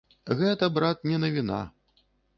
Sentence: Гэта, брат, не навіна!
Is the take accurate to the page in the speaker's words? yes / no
yes